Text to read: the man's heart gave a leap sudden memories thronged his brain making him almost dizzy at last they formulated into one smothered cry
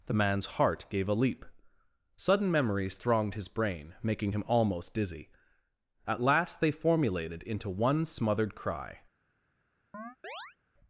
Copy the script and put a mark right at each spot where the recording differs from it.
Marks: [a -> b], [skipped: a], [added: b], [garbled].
the man's heart gave a leap sudden memories thronged his brain making him almost dizzy at last they formulated into one smothered cry